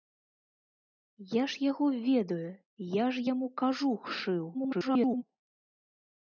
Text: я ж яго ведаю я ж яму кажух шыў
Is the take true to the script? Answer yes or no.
no